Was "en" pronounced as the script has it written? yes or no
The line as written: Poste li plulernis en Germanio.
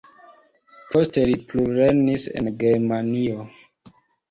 yes